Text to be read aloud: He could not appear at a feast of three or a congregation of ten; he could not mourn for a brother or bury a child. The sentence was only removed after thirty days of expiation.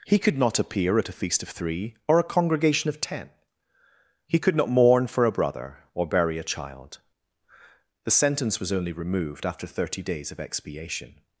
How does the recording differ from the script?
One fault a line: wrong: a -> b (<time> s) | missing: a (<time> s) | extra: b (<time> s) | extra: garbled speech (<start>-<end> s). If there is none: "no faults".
no faults